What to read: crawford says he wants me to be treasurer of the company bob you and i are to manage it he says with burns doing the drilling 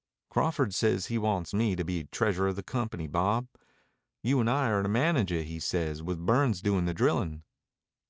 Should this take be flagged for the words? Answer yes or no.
no